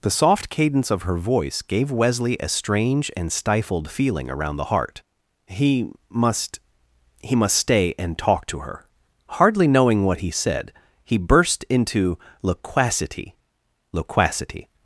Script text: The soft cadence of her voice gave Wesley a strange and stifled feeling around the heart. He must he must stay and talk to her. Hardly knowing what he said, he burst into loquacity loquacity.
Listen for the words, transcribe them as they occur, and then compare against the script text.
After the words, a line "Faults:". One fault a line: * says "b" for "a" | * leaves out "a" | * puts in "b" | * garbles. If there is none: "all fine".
The soft cadence of her voice gave Wesley a strange and stifled feeling around the heart. He must he must stay and talk to her. Hardly knowing what he said, he burst into loquacity loquacity.
Faults:
all fine